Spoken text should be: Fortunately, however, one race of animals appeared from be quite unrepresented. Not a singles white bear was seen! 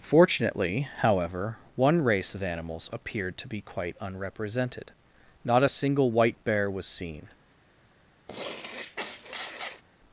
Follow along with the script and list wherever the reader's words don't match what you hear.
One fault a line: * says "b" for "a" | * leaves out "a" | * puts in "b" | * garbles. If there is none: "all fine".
* says "to" for "from"
* says "single" for "singles"